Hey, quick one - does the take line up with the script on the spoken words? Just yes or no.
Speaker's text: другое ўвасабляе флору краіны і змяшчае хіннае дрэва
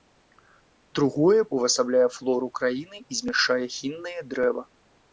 yes